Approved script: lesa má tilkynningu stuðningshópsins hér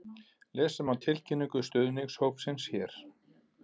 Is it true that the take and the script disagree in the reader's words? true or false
false